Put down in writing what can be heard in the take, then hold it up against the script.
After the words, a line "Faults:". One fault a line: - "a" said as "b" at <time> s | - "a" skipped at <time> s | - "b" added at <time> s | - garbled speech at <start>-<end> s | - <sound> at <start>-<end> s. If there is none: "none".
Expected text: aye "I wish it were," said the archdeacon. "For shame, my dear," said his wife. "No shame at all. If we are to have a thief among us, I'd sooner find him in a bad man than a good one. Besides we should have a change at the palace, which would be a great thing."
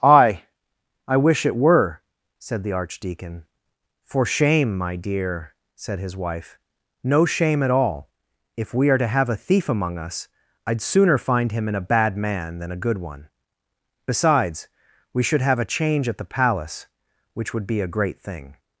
aye "I wish it were," said the archdeacon. "For shame, my dear," said his wife. "No shame at all. If we are to have a thief among us, I'd sooner find him in a bad man than a good one. Besides we should have a change at the palace, which would be a great thing."
Faults:
none